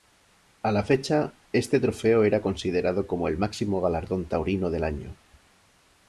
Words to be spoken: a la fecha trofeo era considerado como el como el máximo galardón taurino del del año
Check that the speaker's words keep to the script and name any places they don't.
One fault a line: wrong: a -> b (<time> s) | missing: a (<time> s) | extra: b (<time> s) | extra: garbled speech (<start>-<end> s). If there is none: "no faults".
extra: este (1.5 s)
missing: como el (3.4 s)
missing: del (4.8 s)